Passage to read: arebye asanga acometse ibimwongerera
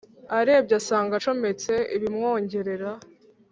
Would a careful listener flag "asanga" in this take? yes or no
no